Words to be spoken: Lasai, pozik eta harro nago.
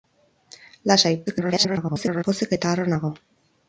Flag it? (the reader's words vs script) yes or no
yes